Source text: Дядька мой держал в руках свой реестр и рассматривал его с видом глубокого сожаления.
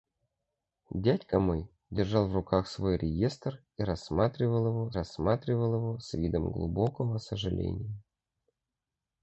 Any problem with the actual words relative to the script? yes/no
yes